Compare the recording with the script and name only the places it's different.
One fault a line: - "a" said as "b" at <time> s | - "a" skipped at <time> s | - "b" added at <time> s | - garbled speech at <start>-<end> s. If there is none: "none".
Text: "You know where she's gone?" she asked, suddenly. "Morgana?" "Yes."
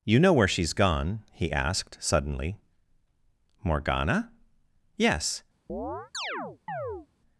- "she" said as "he" at 1.3 s